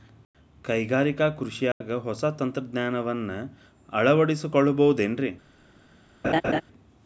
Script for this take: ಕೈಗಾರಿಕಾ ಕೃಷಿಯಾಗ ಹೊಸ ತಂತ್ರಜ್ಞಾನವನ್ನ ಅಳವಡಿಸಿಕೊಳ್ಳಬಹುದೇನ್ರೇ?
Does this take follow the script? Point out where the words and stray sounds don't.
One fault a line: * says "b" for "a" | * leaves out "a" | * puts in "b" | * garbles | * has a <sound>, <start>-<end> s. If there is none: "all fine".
* has a dropout, 1.7-1.8 s
* has a laugh, 6.2-6.6 s